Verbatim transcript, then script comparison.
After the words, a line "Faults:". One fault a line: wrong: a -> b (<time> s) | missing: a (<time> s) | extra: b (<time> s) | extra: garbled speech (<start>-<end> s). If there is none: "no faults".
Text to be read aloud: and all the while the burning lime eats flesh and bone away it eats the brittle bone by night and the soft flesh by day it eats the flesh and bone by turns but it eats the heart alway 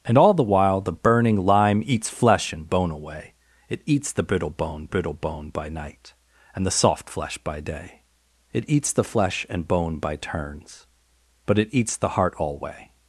and all the while the burning lime eats flesh and bone away it eats the brittle bone brittle bone by night and the soft flesh by day it eats the flesh and bone by turns but it eats the heart alway
Faults:
extra: brittle bone (4.9 s)